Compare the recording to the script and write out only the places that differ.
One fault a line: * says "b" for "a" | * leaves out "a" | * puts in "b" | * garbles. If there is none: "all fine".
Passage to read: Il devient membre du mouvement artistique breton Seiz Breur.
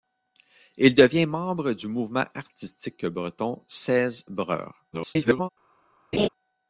* garbles